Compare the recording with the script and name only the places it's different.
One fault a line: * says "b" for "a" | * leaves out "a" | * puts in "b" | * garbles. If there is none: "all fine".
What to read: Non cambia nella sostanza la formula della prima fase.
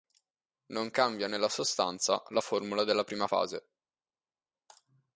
all fine